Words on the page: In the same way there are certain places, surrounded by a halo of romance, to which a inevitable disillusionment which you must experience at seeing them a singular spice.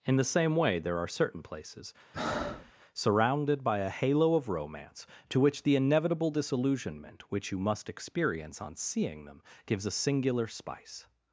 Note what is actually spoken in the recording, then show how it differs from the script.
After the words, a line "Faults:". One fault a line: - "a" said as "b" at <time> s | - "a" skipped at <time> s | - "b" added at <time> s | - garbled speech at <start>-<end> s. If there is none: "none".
In the same way there are certain places, surrounded by a halo of romance, to which the inevitable disillusionment which you must experience on seeing them gives a singular spice.
Faults:
- "a" said as "the" at 5.6 s
- "at" said as "on" at 8.6 s
- "gives" added at 9.6 s